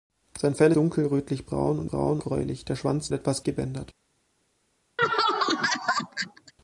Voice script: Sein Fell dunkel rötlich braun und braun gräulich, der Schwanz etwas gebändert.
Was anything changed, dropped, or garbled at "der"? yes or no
no